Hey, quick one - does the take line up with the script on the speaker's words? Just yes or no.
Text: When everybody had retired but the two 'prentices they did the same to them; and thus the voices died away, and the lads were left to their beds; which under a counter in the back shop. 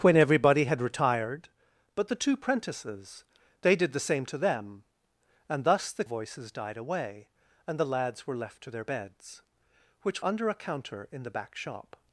yes